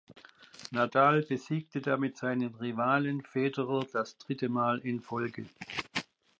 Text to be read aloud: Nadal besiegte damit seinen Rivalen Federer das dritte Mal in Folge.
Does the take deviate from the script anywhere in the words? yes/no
no